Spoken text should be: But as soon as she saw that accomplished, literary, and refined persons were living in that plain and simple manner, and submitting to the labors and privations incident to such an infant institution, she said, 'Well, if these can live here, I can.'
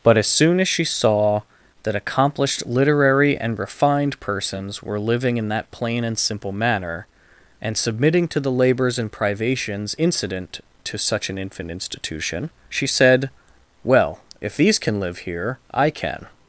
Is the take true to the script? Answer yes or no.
yes